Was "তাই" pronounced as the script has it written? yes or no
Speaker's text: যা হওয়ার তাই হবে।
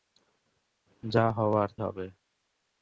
no